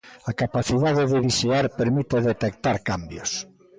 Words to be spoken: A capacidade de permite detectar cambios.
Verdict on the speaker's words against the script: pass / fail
fail